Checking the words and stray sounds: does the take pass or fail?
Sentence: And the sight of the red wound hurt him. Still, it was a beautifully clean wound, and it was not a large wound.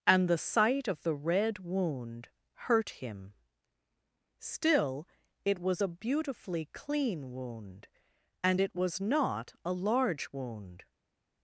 pass